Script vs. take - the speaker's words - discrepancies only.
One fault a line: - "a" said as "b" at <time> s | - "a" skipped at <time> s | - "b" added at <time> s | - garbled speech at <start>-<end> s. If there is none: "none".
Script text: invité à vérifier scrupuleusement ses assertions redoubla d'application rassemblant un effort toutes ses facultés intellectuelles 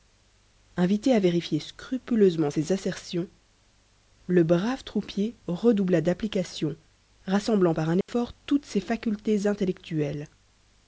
- "le brave troupier" added at 4.3 s
- "par" added at 7.7 s